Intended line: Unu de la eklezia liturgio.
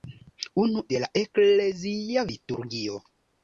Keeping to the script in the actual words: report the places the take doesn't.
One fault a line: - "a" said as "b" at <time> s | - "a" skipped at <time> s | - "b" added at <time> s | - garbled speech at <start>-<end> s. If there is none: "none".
none